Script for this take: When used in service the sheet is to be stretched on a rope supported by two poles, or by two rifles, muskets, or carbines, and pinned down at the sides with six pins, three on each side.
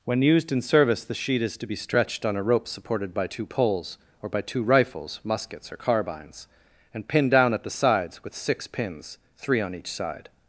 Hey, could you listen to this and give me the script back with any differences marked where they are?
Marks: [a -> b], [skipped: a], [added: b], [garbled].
When used in service the sheet is to be stretched on a rope supported by two poles, or by two rifles, muskets, or carbines, and pinned down at the sides with six pins, three on each side.